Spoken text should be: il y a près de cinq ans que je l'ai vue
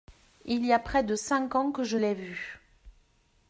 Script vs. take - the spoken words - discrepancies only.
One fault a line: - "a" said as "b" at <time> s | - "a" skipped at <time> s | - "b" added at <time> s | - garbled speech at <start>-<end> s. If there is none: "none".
none